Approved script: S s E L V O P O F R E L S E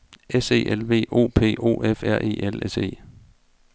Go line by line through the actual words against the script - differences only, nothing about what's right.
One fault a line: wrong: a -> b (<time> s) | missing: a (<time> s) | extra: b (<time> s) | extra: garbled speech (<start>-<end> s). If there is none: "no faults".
missing: s (0.5 s)